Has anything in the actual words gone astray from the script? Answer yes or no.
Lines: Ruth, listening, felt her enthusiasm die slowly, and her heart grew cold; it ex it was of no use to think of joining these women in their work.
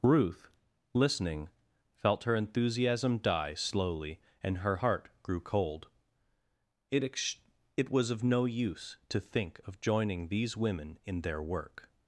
no